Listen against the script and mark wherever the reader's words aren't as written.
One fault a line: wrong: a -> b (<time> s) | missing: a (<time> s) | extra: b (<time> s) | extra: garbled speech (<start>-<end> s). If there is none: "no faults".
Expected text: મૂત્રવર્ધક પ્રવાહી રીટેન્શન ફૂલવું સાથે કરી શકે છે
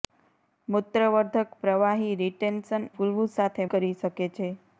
no faults